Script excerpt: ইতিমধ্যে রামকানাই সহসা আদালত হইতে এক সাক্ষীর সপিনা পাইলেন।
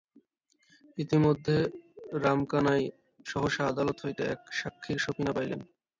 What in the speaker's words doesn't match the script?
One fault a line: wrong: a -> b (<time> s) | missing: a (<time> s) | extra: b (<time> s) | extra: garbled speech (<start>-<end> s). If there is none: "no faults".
no faults